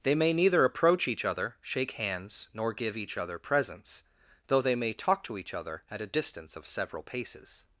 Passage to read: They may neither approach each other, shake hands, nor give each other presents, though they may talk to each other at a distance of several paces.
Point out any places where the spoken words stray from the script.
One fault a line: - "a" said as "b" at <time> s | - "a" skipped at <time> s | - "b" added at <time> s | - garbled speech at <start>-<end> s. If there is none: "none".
none